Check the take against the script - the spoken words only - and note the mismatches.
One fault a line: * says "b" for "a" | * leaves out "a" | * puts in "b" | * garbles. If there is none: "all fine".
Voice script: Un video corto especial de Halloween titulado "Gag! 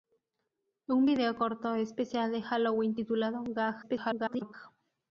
* garbles